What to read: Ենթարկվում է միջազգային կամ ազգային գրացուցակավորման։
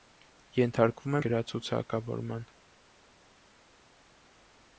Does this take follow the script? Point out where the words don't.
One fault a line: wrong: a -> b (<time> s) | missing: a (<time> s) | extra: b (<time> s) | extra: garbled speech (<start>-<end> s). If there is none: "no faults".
missing: միջազգային կամ ազգային (1.2 s)